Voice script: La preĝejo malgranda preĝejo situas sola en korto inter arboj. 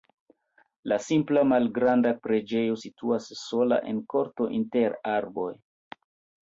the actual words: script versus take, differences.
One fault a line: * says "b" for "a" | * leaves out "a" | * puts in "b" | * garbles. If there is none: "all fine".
* says "simpla" for "preĝejo"